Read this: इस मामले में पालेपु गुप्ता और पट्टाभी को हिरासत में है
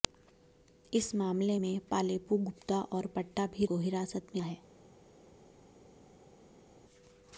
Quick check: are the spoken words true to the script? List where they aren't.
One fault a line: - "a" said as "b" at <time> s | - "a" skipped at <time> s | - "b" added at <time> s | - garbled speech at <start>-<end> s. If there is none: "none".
none